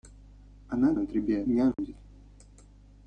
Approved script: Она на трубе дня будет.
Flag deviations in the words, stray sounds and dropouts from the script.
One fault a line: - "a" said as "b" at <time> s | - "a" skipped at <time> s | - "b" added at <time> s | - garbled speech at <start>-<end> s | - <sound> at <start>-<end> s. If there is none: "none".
- dropout at 1.7-1.8 s